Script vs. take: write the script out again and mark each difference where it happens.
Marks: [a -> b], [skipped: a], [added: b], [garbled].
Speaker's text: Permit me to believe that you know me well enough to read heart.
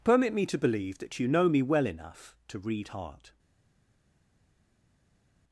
Permit me to believe that you know me well enough to read heart.